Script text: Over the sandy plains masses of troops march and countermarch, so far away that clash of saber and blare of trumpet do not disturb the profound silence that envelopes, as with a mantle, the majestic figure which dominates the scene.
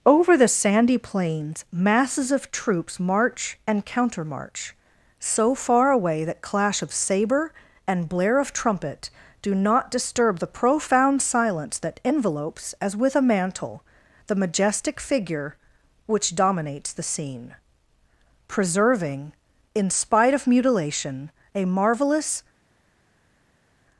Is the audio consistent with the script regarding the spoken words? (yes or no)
no